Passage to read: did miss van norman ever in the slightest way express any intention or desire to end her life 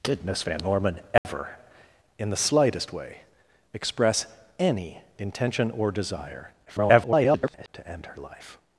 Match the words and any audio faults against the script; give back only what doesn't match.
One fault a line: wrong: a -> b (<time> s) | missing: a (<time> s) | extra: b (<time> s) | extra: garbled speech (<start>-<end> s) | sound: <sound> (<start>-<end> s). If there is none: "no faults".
sound: dropout (1.2-1.2 s)
extra: garbled speech (6.7-7.7 s)